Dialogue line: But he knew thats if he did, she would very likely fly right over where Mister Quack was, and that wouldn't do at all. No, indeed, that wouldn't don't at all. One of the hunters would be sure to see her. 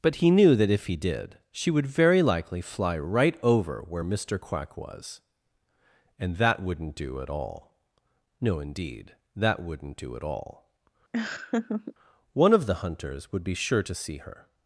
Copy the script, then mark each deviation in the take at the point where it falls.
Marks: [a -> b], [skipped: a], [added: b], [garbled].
But he knew [thats -> that] if he did, she would very likely fly right over where Mister Quack was, and that wouldn't do at all. No, indeed, that wouldn't [don't -> do] at all. One of the hunters would be sure to see her.